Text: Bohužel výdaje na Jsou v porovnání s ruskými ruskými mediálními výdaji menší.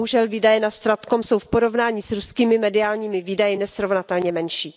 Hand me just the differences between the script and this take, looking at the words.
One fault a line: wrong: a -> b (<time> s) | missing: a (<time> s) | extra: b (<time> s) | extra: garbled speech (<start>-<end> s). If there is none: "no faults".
extra: StratCom (0.7 s)
missing: ruskými (2.6 s)
extra: nesrovnatelně (3.5 s)